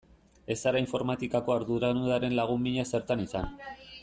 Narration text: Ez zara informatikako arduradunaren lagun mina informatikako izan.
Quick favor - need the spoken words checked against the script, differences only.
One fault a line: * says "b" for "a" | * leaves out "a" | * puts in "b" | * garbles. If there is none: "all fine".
* says "zertan" for "informatikako"